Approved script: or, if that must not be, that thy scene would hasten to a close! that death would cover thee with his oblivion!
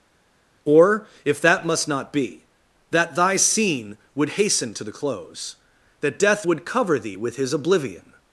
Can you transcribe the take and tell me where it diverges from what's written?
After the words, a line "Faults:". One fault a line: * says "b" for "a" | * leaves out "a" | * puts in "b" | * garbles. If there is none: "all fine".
or, if that must not be, that thy scene would hasten to the close! that death would cover thee with his oblivion!
Faults:
* says "the" for "a"